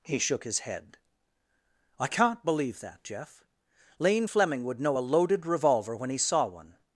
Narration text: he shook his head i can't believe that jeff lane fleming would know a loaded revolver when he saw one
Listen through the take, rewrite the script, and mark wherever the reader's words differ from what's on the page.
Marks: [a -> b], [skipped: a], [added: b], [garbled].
he shook his head i can't believe that jeff lane fleming would know a loaded revolver when he saw one